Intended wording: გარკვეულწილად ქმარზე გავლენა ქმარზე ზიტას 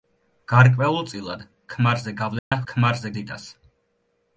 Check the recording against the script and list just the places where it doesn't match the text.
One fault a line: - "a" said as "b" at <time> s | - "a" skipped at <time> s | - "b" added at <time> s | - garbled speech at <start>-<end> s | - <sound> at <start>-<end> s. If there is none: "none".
- dropout at 2.4-2.5 s